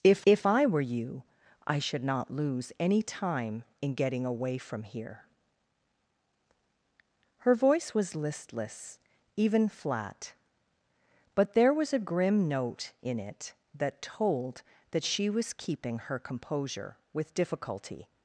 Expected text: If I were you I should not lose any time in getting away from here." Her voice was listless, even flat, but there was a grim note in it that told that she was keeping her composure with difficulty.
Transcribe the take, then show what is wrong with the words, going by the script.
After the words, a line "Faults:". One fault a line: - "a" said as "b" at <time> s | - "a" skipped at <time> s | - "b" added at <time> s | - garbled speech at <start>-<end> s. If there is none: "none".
If if I were you I should not lose any time in getting away from here." Her voice was listless, even flat, but there was a grim note in it that told that she was keeping her composure with difficulty.
Faults:
- "if" added at 0.2 s